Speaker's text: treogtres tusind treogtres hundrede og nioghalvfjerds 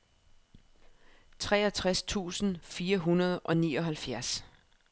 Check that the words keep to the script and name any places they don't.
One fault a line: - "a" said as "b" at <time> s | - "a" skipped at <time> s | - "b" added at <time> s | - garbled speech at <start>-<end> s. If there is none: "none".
- "treogtres" said as "fire" at 2.6 s